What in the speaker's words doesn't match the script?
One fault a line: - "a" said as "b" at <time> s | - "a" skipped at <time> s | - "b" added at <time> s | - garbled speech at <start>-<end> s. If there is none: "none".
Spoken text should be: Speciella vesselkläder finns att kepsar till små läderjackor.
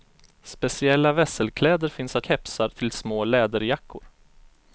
none